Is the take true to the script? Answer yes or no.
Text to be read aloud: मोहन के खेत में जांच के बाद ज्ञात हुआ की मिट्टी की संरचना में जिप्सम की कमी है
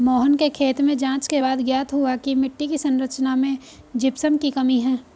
yes